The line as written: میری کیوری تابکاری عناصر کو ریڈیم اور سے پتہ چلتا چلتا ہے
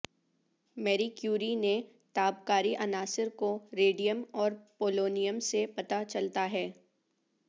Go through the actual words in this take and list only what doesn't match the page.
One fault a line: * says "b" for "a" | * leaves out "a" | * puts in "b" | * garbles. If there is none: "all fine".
* puts in "نے"
* puts in "پولونیم"
* leaves out "چلتا"